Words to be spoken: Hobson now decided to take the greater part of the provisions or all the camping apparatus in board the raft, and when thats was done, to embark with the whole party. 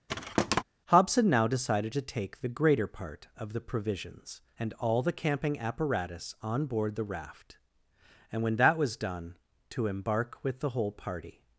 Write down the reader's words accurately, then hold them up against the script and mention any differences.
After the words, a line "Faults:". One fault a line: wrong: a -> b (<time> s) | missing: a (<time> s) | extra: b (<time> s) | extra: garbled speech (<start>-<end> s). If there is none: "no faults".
Hobson now decided to take the greater part of the provisions and all the camping apparatus on board the raft, and when that was done, to embark with the whole party.
Faults:
wrong: or -> and (4.6 s)
wrong: in -> on (6.4 s)
wrong: thats -> that (8.6 s)